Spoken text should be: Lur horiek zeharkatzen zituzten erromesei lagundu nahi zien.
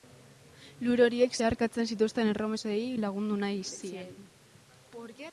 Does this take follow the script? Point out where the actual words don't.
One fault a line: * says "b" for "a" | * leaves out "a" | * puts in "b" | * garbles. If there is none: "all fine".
all fine